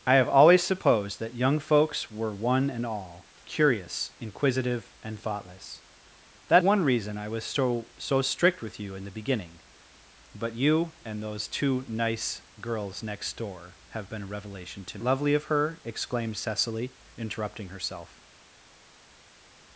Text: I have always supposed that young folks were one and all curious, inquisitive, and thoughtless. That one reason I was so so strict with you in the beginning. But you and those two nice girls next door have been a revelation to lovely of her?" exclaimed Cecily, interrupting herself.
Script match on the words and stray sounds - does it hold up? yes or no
yes